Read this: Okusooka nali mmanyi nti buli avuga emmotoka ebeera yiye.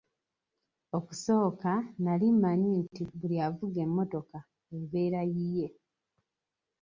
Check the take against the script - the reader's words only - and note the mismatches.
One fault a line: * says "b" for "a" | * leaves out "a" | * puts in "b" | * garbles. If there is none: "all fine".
all fine